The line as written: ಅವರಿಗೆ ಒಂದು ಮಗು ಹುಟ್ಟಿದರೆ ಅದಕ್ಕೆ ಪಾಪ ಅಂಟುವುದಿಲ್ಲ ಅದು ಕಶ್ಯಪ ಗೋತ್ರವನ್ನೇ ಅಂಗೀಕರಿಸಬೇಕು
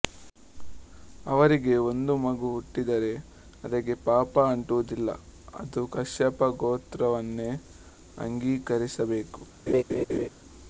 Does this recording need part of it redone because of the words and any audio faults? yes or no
yes